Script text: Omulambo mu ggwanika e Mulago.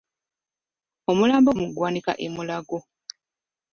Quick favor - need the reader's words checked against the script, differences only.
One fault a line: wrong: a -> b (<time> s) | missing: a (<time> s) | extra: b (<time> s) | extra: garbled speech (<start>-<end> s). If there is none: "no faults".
no faults